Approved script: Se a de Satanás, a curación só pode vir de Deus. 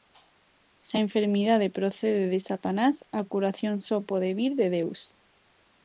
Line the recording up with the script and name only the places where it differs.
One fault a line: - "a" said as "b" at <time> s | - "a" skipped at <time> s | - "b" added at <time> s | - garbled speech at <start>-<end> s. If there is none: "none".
- "enfermidade procede" added at 1.0 s